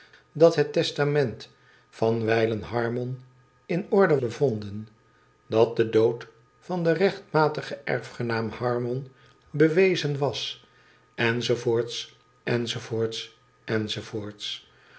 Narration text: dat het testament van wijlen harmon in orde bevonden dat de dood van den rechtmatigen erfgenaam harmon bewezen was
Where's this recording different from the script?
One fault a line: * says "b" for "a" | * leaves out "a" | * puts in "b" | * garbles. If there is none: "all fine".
all fine